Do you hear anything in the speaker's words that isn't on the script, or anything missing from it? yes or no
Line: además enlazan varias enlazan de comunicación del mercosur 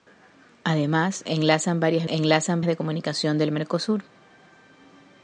no